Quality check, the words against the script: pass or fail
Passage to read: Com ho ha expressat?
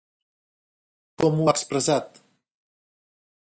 pass